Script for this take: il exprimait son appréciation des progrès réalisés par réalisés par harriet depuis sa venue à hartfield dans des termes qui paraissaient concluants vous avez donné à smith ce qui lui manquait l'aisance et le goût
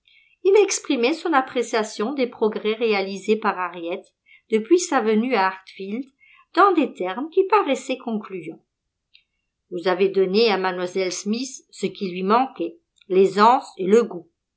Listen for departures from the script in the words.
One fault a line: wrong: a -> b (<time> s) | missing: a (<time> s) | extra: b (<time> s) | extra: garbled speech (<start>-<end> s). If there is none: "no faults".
missing: réalisés par (3.6 s)
extra: mlle (10.6 s)